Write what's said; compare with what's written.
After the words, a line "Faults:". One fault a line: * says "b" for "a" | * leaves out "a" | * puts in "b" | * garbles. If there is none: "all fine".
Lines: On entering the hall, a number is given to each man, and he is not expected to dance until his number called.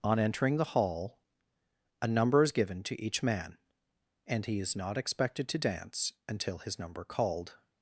On entering the hall, a number is given to each man, and he is not expected to dance until his number called.
Faults:
all fine